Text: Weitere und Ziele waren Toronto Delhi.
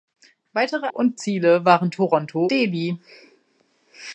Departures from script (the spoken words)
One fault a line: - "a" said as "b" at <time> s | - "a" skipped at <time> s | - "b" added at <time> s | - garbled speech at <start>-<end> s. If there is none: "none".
none